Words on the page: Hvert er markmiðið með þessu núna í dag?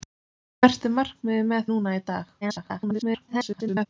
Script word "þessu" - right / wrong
wrong